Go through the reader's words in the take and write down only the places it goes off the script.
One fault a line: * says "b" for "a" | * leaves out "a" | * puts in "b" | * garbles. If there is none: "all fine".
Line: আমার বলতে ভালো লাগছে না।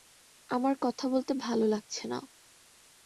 * puts in "কথা"